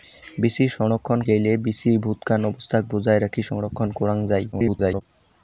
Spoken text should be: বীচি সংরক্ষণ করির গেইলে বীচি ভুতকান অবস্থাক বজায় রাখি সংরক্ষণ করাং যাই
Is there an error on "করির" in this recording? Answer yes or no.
yes